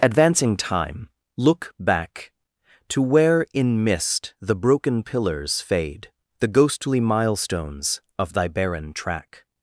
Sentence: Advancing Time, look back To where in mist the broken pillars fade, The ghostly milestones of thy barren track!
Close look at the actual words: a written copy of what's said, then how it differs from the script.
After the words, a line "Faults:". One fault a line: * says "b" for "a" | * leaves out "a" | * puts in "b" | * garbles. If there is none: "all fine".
Advancing Time, look back To where in mist the broken pillars fade, The ghostly milestones of thy barren track!
Faults:
all fine